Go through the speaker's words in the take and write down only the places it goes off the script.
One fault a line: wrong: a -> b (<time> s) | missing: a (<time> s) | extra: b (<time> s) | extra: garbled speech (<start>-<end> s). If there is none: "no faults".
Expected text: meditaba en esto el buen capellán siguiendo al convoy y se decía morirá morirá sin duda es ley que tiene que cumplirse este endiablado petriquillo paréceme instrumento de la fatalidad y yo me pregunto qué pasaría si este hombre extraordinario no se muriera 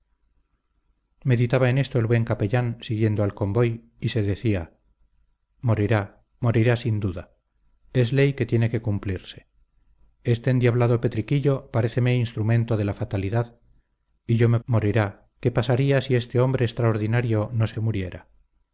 wrong: pregunto -> morirá (14.6 s)
extra: se (17.7 s)